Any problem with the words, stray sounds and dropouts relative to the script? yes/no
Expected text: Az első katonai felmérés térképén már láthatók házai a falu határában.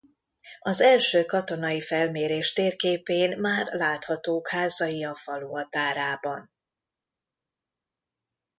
no